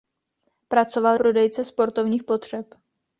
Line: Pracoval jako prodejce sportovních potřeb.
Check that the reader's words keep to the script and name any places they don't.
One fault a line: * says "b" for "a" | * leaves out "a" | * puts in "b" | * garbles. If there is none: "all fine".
* leaves out "jako"